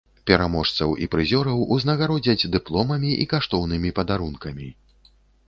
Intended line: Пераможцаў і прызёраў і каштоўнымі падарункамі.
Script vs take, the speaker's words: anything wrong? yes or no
yes